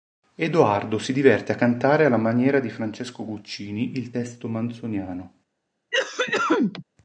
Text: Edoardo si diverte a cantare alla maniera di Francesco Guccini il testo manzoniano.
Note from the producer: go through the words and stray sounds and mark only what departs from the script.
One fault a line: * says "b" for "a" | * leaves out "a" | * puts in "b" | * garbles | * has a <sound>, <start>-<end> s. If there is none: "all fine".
* has a cough, 5.9-6.8 s